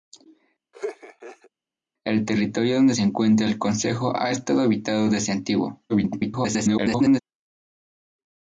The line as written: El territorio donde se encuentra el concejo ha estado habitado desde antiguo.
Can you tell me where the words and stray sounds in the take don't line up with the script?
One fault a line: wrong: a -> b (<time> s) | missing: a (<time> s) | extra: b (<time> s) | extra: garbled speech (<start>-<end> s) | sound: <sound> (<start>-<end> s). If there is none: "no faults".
sound: laugh (0.7-1.5 s)
extra: garbled speech (5.9-7.2 s)